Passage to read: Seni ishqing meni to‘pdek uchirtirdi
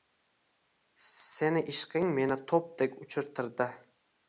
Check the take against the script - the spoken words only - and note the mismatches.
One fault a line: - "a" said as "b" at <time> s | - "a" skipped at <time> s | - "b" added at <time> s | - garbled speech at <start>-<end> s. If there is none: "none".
none